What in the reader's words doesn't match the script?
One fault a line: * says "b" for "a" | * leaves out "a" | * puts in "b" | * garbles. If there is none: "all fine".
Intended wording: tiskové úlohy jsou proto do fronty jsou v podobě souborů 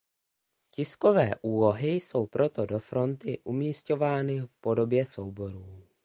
* says "umisťovány" for "jsou"